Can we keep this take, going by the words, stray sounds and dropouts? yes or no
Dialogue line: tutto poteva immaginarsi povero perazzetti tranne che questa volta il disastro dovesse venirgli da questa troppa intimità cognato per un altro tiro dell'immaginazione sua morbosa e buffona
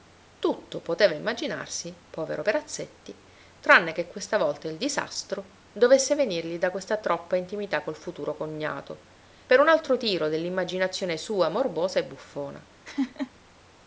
no